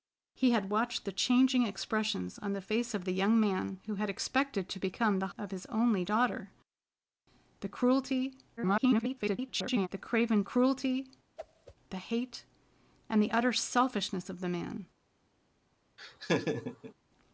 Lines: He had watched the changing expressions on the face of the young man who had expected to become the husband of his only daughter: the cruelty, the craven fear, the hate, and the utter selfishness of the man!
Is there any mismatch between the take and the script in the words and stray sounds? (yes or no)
yes